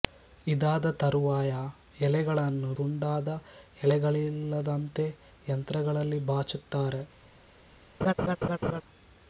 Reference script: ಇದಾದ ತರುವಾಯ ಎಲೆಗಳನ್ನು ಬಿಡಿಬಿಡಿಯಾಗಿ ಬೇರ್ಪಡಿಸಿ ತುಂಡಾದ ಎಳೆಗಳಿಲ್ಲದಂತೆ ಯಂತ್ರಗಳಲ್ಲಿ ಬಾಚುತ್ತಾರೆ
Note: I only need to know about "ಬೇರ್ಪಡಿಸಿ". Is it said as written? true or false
false